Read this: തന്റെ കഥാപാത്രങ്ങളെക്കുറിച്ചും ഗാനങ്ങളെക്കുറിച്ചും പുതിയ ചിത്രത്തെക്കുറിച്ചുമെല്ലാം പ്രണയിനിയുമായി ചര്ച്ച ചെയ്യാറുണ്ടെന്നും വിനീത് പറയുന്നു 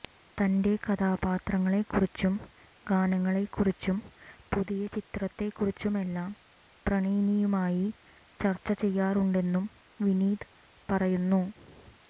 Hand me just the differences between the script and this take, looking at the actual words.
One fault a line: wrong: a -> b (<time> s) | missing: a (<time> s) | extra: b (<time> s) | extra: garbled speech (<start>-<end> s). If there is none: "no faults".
no faults